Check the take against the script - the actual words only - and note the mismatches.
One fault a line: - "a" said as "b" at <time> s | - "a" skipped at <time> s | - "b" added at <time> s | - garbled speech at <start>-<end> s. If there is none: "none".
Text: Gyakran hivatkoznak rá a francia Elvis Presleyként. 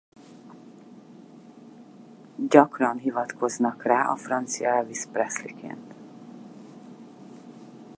none